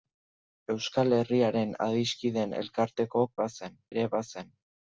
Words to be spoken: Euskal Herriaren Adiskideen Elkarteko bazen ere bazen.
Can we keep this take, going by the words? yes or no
yes